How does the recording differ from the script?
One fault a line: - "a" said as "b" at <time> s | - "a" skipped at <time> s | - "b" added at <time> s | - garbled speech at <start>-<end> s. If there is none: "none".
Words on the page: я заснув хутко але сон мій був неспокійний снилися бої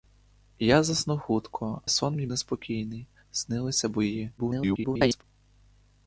- "але" skipped at 1.8 s
- "був" skipped at 2.3 s
- garbled speech at 4.4-5.2 s